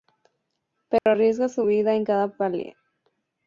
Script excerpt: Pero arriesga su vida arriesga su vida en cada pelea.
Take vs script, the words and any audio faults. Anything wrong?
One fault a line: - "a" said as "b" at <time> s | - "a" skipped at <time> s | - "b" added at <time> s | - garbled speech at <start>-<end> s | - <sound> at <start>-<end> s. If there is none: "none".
- dropout at 1.0-1.1 s
- "arriesga su vida" skipped at 2.0 s